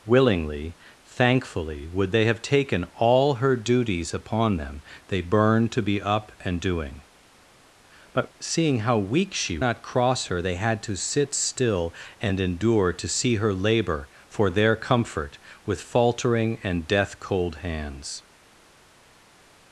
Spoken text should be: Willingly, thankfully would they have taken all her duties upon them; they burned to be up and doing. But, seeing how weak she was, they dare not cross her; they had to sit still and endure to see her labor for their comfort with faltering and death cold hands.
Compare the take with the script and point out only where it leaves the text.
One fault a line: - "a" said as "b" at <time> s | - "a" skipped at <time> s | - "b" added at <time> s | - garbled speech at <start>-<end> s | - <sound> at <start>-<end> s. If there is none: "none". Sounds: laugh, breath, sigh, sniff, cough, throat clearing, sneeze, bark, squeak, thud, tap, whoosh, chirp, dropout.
- "was they dare" skipped at 9.6 s